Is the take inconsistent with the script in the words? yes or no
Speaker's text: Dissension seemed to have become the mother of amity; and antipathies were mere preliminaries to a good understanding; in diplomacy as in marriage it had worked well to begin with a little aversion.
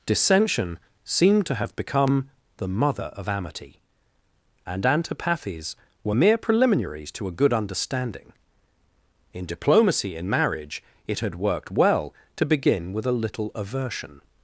yes